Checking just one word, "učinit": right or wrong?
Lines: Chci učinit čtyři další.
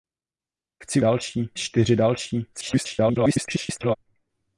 wrong